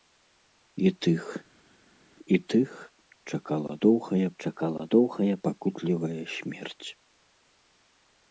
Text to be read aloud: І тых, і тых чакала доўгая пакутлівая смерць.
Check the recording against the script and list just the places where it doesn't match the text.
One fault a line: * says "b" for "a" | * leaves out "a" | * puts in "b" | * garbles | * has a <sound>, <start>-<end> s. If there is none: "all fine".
* puts in "чакала доўгая"